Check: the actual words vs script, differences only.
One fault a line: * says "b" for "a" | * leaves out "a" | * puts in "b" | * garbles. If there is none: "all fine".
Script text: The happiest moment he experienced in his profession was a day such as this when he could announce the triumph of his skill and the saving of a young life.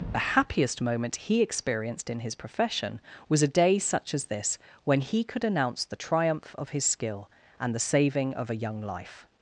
all fine